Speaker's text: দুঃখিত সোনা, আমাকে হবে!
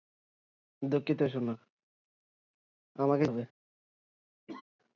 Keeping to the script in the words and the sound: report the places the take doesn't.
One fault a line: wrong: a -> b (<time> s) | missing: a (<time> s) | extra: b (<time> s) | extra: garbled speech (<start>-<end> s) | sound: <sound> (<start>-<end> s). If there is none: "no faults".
sound: laugh (4.5-4.6 s)